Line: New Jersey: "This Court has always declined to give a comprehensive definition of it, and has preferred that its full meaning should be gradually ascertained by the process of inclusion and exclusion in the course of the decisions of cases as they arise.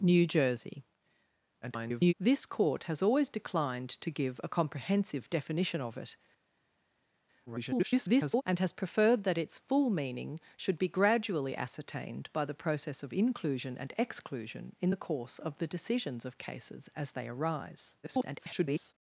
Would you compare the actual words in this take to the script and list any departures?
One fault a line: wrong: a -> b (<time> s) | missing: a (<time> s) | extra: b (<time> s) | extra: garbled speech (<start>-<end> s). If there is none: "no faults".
extra: garbled speech (1.6-2.1 s)
extra: garbled speech (7.5-8.4 s)
extra: garbled speech (18.0-18.9 s)